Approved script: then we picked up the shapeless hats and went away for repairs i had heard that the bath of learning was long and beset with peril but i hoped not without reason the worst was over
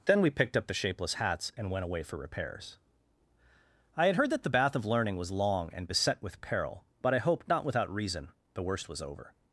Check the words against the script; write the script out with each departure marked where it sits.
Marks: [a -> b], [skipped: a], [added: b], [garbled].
then we picked up the shapeless hats and went away for repairs i had heard that the bath of learning was long and beset with peril but i hoped not without reason the worst was over